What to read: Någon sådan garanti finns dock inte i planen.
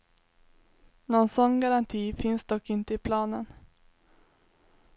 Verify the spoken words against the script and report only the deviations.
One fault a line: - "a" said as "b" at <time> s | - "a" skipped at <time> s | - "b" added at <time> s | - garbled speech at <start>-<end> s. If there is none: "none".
none